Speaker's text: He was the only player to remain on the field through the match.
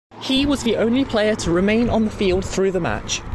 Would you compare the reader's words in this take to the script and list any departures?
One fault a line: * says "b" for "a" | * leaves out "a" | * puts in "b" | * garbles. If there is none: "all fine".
all fine